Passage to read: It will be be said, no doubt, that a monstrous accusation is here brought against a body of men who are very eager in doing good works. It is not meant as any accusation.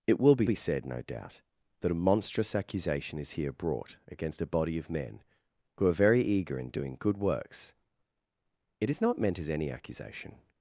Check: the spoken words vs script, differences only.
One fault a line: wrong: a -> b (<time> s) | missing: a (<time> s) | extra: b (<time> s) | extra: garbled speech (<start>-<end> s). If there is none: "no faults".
no faults